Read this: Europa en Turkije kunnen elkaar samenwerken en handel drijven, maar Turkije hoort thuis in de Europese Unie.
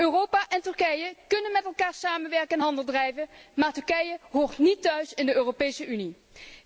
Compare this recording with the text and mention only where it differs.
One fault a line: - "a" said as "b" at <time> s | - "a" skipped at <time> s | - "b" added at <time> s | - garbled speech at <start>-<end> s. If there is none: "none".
- "met" added at 1.5 s
- "niet" added at 4.6 s